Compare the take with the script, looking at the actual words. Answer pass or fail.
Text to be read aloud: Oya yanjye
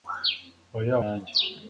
pass